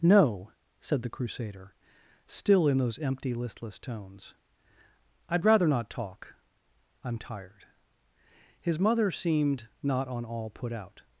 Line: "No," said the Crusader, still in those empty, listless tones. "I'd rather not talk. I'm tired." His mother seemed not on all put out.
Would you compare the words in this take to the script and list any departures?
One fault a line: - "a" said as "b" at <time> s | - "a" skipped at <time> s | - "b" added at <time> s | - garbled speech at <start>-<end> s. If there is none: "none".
none